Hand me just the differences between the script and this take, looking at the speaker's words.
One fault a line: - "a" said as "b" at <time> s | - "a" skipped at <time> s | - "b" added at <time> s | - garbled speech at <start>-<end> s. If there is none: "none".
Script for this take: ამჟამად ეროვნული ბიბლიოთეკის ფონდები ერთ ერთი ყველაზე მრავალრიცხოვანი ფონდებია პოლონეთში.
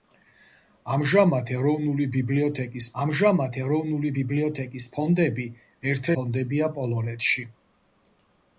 - "ფონდები ერთ ერთი ყველაზე მრავალრიცხოვანი" said as "ამჟამად ეროვნული ბიბლიოთეკის ფონდები ერთ" at 3.0 s